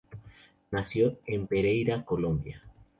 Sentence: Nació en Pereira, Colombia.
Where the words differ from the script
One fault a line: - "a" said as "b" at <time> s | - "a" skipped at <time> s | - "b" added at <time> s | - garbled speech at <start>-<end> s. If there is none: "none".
none